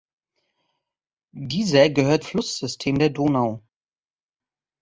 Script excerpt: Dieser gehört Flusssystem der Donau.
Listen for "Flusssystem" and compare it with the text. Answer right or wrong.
right